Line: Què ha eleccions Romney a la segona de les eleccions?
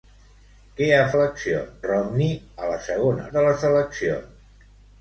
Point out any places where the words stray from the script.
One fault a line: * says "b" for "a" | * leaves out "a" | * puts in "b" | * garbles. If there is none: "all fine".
all fine